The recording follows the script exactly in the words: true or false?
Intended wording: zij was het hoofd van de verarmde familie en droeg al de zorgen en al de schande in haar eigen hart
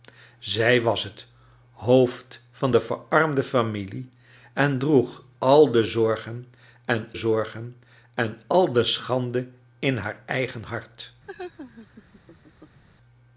false